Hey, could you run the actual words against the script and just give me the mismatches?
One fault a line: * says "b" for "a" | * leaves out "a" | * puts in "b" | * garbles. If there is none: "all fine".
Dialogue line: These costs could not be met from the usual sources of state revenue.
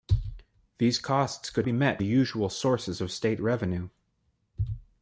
* leaves out "not"
* leaves out "from"